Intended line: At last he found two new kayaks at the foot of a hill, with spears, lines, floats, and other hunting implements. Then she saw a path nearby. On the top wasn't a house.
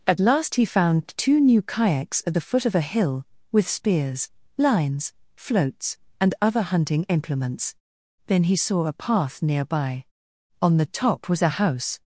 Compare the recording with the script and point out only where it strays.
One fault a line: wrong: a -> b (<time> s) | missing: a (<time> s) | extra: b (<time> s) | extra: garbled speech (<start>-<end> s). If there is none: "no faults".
wrong: she -> he (8.4 s)
wrong: wasn't -> was (11.3 s)